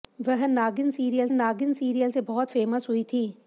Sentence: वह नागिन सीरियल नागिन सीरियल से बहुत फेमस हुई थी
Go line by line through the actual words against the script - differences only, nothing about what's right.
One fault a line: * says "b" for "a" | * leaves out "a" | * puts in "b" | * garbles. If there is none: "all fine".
all fine